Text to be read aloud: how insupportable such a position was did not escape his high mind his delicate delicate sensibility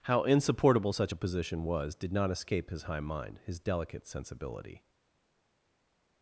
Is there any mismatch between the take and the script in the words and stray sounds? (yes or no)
yes